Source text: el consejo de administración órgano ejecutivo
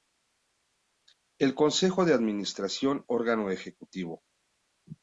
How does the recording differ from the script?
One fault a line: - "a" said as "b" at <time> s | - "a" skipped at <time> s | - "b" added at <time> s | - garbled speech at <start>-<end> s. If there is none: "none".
none